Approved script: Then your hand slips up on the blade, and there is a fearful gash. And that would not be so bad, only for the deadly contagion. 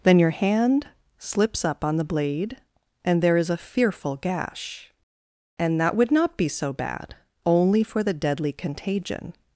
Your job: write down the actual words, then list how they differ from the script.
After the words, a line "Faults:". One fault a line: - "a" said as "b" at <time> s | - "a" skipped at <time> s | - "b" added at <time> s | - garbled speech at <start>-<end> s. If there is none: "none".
Then your hand slips up on the blade, and there is a fearful gash. And that would not be so bad, only for the deadly contagion.
Faults:
none